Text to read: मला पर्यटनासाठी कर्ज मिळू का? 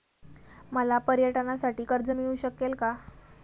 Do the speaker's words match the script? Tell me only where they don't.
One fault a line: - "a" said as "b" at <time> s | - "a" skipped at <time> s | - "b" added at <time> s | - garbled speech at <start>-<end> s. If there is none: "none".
- "शकेल" added at 2.4 s